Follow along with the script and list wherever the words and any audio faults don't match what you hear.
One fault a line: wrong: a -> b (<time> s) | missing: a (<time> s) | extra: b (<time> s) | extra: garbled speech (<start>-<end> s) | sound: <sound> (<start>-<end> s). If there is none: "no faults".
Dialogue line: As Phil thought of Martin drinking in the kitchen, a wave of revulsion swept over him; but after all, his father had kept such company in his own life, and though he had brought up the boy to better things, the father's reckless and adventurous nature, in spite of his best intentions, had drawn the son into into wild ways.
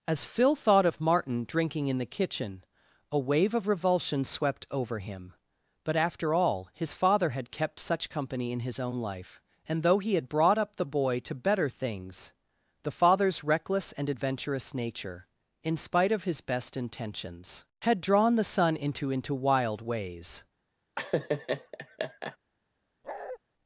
sound: laugh (21.0-22.4 s)
sound: bark (23.0-23.4 s)